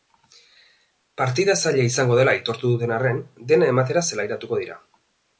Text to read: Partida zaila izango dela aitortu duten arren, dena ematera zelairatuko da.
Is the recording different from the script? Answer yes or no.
yes